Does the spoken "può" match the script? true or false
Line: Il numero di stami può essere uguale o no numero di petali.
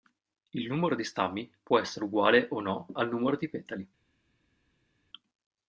true